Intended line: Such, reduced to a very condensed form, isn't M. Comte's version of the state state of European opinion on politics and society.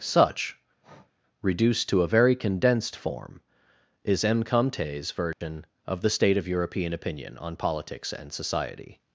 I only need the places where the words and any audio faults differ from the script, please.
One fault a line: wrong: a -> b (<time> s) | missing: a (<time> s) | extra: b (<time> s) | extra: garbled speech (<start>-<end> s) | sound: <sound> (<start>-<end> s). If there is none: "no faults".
sound: breath (0.8-1.1 s)
wrong: isn't -> is (4.0 s)
sound: dropout (5.3-5.4 s)
missing: state (6.4 s)